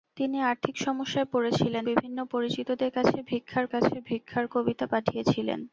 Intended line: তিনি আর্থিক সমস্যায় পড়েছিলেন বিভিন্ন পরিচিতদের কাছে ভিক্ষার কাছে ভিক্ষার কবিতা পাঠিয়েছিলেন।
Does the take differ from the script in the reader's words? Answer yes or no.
no